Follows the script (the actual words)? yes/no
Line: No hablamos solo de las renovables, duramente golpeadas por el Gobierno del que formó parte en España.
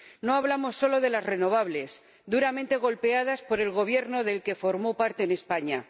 yes